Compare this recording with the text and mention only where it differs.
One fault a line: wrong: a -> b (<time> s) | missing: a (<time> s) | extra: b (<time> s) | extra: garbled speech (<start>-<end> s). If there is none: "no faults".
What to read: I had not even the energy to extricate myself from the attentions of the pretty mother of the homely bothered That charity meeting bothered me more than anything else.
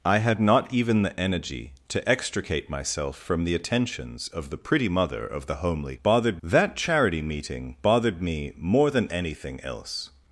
no faults